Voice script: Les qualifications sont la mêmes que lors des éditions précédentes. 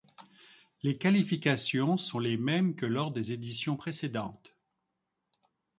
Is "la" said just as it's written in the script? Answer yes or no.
no